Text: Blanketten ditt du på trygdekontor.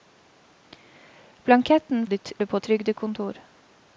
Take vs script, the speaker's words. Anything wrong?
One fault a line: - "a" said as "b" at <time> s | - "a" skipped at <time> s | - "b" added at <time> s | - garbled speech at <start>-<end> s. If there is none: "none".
none